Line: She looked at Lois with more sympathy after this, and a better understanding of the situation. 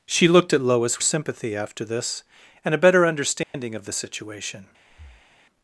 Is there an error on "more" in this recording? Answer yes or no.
yes